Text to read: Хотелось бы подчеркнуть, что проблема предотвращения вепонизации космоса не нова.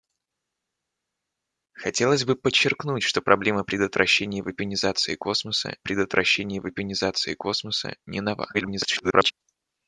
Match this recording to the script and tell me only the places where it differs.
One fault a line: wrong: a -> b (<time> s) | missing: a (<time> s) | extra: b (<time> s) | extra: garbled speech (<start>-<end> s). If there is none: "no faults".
extra: предотвращения вепонизации космоса (5.8 s)
extra: garbled speech (8.5-9.3 s)